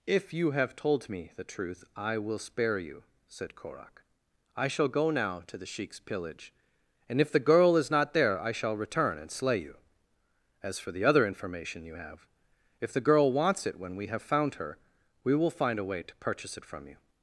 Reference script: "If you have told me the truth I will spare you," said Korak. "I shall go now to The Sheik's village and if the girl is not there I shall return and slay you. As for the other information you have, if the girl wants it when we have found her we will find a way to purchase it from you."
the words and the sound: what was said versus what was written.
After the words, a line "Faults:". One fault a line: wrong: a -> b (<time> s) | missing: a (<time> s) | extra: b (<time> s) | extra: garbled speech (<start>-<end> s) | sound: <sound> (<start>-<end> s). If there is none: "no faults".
"If you have told me the truth I will spare you," said Korak. "I shall go now to The Sheik's pillage and if the girl is not there I shall return and slay you. As for the other information you have, if the girl wants it when we have found her we will find a way to purchase it from you."
Faults:
wrong: village -> pillage (6.0 s)